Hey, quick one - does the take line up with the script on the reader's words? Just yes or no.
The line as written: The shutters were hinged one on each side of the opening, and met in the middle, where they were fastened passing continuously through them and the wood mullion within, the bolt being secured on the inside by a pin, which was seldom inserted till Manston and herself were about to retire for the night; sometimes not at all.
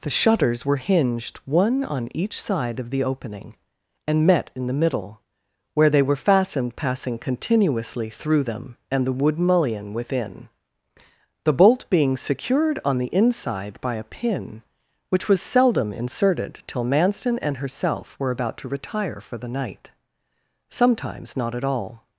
yes